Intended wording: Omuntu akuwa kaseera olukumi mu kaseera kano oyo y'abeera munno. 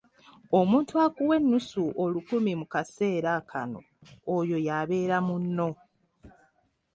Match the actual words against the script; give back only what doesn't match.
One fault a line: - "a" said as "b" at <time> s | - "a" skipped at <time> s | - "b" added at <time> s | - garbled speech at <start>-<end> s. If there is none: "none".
- "kaseera" said as "ennusu" at 1.4 s